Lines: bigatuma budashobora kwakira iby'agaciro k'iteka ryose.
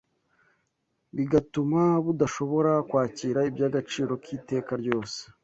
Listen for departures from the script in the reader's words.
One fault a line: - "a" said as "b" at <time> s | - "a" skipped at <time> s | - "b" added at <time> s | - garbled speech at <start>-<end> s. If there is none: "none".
none